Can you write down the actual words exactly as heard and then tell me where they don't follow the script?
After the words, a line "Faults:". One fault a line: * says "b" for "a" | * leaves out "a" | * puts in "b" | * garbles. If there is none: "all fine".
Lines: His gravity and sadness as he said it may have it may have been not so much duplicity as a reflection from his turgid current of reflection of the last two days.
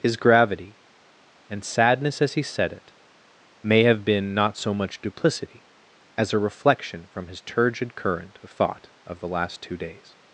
His gravity and sadness as he said it may have been not so much duplicity as a reflection from his turgid current of thought of the last two days.
Faults:
* leaves out "it may have"
* says "thought" for "reflection"